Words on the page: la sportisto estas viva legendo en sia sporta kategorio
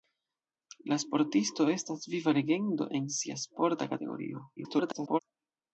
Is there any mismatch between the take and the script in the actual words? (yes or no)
yes